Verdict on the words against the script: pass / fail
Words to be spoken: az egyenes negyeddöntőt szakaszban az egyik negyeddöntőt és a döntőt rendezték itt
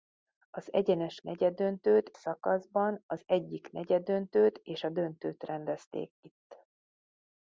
pass